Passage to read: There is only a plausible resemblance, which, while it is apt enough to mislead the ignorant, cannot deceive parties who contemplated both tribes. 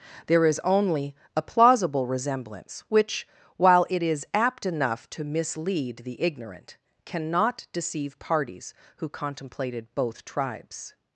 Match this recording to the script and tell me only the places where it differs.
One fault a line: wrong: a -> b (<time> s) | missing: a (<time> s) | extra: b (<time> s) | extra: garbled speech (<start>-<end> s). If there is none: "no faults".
no faults